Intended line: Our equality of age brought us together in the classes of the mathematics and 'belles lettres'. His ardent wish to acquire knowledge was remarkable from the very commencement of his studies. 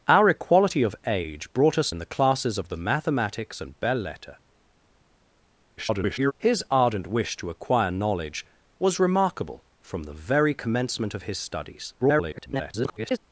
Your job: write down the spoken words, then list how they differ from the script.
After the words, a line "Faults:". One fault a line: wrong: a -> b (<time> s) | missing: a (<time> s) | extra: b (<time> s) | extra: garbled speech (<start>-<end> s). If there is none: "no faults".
Our equality of age brought us in the classes of the mathematics and 'belles lettres'. [garbled] His ardent wish to acquire knowledge was remarkable from the very commencement of his studies. [garbled]
Faults:
missing: together (1.9 s)
extra: garbled speech (5.8-6.3 s)
extra: garbled speech (12.0-13.2 s)